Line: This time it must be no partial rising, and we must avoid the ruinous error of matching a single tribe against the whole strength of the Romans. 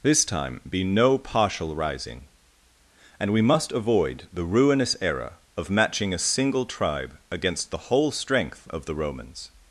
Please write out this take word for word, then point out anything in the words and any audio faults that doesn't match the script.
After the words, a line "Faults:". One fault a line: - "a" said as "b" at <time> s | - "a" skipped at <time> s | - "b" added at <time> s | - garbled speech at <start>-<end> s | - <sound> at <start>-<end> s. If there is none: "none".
This time be no partial rising, and we must avoid the ruinous error of matching a single tribe against the whole strength of the Romans.
Faults:
- "it must" skipped at 0.6 s